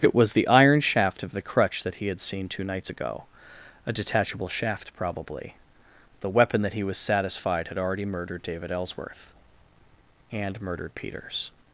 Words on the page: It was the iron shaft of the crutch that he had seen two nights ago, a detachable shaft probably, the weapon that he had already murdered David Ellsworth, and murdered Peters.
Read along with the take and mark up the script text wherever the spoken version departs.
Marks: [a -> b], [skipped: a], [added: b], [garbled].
It was the iron shaft of the crutch that he had seen two nights ago, a detachable shaft probably, the weapon that he [added: was satisfied] had already murdered David Ellsworth, and murdered Peters.